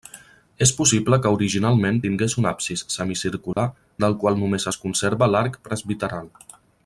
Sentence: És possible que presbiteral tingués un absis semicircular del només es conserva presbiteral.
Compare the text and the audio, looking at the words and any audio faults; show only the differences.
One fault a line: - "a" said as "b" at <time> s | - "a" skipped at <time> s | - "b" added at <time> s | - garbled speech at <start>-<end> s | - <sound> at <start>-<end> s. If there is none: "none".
- "presbiteral" said as "originalment" at 1.4 s
- dropout at 3.5-3.6 s
- "qual" added at 4.3 s
- "l'arc" added at 5.4 s